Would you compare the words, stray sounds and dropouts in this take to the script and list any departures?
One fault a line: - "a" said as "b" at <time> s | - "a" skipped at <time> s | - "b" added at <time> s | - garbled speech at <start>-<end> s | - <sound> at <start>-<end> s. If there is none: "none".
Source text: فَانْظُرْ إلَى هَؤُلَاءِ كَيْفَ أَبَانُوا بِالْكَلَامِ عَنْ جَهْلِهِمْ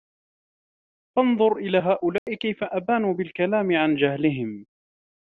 - dropout at 2.2-2.3 s